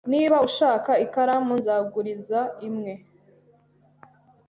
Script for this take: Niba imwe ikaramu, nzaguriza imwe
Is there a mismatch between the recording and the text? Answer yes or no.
yes